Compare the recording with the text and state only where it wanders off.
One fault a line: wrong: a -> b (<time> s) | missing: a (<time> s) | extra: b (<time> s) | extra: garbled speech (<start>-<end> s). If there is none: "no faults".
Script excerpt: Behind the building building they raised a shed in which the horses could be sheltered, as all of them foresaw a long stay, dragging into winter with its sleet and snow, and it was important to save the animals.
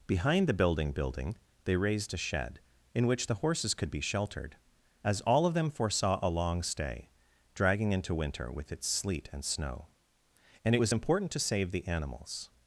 no faults